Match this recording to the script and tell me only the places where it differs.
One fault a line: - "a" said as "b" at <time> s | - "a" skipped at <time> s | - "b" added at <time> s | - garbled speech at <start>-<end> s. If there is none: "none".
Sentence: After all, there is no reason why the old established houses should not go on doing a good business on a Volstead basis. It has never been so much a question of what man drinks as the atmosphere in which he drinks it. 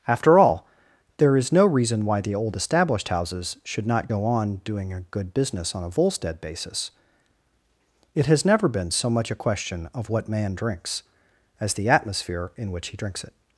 none